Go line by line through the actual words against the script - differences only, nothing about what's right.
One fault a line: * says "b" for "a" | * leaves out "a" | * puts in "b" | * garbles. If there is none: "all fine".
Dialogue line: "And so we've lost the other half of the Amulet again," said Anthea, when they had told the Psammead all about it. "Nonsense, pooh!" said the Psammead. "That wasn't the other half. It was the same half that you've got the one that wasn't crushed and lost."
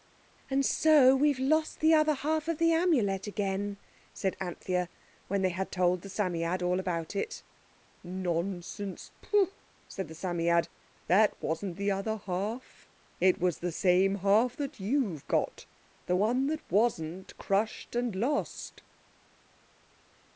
all fine